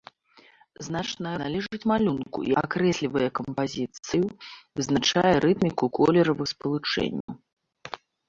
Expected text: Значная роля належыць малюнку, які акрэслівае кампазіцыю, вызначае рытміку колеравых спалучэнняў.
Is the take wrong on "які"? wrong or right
wrong